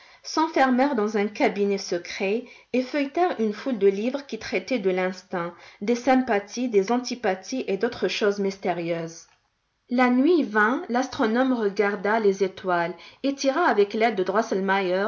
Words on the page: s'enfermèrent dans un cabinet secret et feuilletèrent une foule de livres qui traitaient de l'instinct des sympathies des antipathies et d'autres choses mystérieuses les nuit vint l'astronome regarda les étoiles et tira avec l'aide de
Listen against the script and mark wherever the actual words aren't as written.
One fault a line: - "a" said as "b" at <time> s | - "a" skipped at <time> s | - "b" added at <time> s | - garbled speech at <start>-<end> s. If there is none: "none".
- "les" said as "la" at 9.9 s